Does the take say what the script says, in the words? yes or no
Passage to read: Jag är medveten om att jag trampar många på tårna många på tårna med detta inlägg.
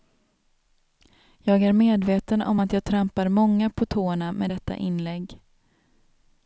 no